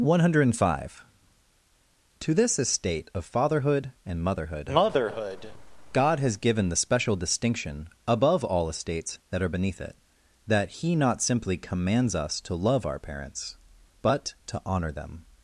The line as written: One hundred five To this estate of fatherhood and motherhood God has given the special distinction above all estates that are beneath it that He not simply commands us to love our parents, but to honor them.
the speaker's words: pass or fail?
fail